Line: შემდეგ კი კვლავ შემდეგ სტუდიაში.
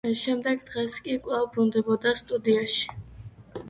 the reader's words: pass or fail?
fail